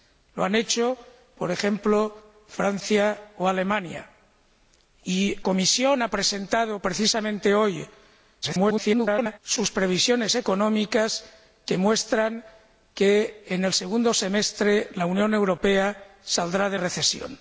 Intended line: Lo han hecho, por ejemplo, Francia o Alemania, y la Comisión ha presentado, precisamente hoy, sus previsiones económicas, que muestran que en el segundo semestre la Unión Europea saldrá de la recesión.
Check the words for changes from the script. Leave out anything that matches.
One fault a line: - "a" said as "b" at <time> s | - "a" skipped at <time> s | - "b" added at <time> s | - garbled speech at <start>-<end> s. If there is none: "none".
- "la" skipped at 5.4 s
- garbled speech at 8.4-9.4 s
- "la" skipped at 16.8 s